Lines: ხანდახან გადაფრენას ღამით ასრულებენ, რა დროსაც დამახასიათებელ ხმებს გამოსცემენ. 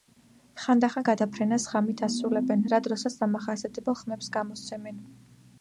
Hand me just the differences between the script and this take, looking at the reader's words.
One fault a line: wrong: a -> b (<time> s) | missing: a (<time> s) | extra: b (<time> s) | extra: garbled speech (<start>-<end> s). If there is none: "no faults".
no faults